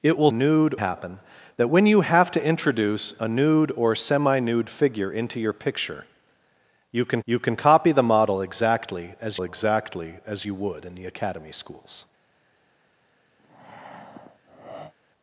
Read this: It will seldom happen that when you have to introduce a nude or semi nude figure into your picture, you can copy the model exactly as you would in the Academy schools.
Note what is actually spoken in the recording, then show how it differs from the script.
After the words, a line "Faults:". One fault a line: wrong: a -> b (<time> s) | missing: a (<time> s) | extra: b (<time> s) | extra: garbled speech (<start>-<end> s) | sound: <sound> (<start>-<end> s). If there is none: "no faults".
It will nude happen that when you have to introduce a nude or semi nude figure into your picture, you can you can copy the model exactly as exactly as you would in the Academy schools.
Faults:
wrong: seldom -> nude (0.3 s)
extra: you can (7.2 s)
extra: exactly as (9.4 s)
sound: breath (13.4-14.9 s)